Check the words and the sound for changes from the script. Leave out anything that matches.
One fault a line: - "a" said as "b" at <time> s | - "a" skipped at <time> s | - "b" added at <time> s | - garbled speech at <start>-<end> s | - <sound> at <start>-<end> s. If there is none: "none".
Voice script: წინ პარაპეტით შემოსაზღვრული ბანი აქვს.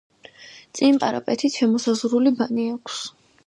none